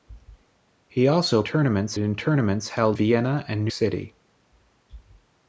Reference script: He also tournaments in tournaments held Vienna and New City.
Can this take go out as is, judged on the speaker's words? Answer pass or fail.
pass